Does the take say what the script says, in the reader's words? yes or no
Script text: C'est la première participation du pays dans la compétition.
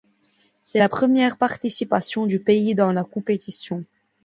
yes